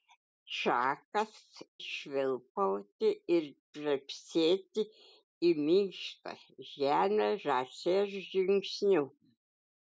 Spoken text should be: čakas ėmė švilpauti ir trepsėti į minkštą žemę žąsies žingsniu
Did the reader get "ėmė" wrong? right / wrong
wrong